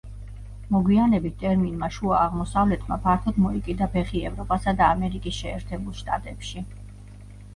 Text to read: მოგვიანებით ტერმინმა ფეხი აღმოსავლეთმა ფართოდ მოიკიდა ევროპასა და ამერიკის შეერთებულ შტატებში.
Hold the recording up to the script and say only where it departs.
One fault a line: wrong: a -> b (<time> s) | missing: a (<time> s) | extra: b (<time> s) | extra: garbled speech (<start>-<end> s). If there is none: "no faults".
wrong: ფეხი -> შუა (2.0 s)
extra: ფეხი (4.0 s)